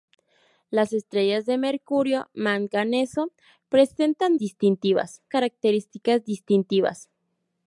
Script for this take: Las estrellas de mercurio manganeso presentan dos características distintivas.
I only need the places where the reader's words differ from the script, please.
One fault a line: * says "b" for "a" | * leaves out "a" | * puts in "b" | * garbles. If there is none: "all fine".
* says "distintivas" for "dos"